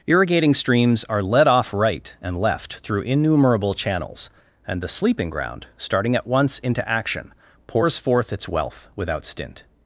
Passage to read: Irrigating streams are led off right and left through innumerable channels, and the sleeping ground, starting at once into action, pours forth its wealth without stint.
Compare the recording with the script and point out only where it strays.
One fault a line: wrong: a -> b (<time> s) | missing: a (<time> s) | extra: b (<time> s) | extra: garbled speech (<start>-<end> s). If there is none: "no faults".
no faults